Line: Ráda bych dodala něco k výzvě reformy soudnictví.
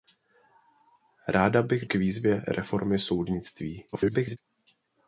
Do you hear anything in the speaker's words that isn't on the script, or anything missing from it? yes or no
yes